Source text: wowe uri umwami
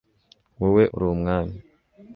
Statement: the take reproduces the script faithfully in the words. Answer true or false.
true